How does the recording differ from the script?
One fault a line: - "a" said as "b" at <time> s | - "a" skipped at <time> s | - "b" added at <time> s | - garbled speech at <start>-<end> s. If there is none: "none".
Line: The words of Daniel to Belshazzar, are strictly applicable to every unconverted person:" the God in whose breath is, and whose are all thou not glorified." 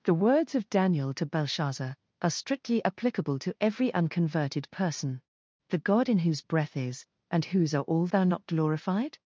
none